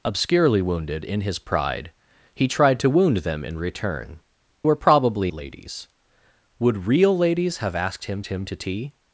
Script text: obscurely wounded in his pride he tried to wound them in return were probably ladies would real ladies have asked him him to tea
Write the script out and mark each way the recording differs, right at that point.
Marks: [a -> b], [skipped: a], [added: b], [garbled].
obscurely wounded in his pride he tried to wound them in return were probably ladies would real ladies have asked him him to tea